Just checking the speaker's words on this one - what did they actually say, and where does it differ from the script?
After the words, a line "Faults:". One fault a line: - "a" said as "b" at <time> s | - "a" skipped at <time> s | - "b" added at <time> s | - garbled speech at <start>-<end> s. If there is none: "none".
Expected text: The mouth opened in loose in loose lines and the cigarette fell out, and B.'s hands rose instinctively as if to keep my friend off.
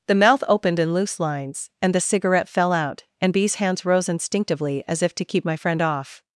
The mouth opened in loose lines and the cigarette fell out, and B.'s hands rose instinctively as if to keep my friend off.
Faults:
- "in loose" skipped at 1.2 s